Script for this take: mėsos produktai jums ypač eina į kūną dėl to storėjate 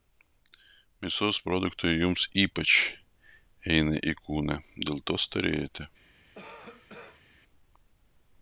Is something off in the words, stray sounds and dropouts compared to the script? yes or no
yes